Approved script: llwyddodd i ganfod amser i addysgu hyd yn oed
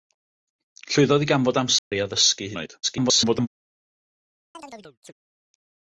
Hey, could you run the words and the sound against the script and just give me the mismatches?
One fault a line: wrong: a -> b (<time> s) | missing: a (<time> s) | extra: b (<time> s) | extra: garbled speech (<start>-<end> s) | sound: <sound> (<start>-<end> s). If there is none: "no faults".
sound: dropout (1.8-1.9 s)
missing: hyd (2.5 s)
extra: garbled speech (2.8-3.5 s)
sound: chirp (4.5-5.1 s)